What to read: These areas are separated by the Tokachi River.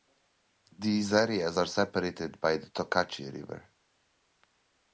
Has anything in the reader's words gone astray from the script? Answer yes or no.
no